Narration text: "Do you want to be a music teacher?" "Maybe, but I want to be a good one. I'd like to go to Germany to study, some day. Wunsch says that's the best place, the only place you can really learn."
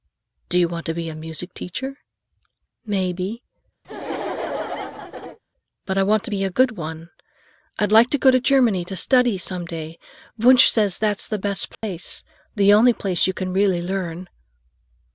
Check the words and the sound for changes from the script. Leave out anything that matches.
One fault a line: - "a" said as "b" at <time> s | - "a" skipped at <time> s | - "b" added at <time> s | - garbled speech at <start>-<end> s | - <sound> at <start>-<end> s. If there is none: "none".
- laugh at 3.8-5.4 s
- dropout at 11.7-11.8 s